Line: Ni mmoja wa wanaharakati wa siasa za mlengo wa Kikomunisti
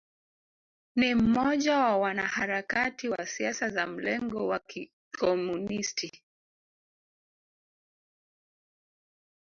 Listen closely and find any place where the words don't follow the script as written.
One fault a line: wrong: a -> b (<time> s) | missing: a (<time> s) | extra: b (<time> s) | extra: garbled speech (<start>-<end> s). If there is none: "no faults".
no faults